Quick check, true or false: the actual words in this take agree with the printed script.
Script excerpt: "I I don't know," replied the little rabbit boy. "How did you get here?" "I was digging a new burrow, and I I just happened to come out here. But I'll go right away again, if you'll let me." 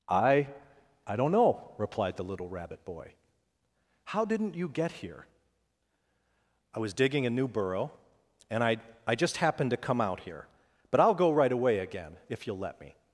false